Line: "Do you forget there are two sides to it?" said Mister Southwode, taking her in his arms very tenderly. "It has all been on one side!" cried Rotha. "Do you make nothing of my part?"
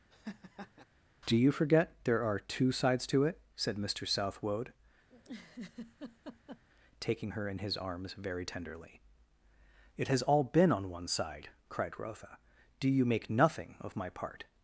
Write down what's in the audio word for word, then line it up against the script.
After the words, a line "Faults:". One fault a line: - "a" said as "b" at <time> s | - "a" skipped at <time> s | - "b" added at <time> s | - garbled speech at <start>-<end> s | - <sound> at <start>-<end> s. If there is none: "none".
"Do you forget there are two sides to it?" said Mister Southwode, taking her in his arms very tenderly. "It has all been on one side!" cried Rotha. "Do you make nothing of my part?"
Faults:
- laugh at 0.1-0.8 s
- laugh at 5.1-6.6 s